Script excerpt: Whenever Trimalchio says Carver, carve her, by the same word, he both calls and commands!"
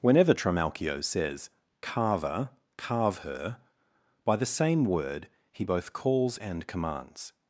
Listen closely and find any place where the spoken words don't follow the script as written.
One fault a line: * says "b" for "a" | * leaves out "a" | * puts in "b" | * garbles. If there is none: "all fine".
all fine